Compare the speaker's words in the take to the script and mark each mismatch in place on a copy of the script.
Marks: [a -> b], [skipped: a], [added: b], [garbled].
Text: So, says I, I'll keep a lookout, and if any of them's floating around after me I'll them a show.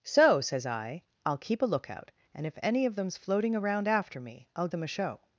So, says I, I'll keep a lookout, and if any of them's floating around after me I'll them a show.